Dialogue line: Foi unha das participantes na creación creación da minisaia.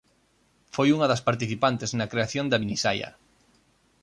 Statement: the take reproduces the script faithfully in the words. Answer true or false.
false